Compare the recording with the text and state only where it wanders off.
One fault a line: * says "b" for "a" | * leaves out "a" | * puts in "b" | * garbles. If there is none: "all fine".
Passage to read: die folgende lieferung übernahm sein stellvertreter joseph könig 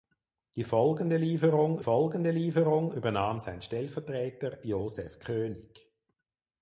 * puts in "folgende lieferung"